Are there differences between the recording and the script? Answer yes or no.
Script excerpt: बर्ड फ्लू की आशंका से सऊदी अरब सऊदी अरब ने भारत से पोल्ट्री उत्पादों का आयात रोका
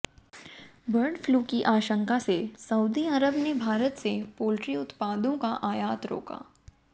yes